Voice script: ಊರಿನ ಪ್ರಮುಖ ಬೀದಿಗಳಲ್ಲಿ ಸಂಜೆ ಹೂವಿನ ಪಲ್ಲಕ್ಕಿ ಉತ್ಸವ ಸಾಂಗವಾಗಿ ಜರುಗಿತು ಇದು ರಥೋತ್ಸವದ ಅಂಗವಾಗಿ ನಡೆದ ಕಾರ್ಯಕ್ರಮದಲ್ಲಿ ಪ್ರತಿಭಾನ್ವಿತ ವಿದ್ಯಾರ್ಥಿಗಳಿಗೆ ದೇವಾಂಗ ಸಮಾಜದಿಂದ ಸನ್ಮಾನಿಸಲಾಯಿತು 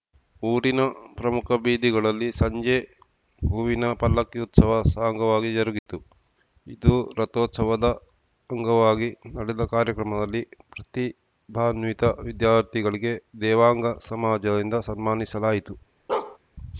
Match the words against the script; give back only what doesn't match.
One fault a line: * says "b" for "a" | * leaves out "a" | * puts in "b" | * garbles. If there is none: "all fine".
all fine